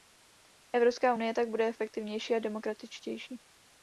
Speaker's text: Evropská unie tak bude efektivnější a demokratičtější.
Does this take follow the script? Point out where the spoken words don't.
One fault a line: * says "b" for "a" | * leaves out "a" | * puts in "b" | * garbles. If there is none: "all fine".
all fine